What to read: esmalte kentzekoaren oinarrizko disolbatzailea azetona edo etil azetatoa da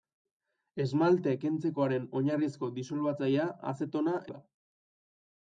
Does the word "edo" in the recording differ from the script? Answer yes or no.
yes